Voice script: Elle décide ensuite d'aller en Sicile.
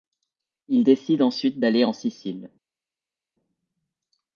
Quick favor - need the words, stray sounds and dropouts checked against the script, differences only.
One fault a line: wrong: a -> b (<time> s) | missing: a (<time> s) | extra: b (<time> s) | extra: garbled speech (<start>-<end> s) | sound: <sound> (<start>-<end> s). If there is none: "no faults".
wrong: Elle -> Il (0.7 s)